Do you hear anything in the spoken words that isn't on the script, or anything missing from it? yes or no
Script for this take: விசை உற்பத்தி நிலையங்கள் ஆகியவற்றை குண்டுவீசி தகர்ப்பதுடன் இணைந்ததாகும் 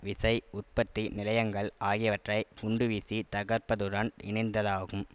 no